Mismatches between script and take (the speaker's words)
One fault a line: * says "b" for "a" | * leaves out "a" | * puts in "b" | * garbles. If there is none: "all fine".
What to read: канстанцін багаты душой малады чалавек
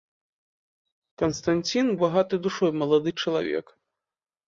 all fine